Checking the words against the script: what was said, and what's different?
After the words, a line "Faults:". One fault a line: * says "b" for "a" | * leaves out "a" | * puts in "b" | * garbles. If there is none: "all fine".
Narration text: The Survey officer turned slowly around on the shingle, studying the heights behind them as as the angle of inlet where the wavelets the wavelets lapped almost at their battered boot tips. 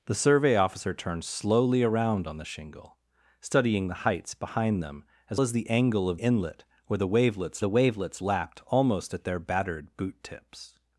The Survey officer turned slowly around on the shingle, studying the heights behind them as as the angle of inlet where the wavelets the wavelets lapped almost at their battered boot tips.
Faults:
all fine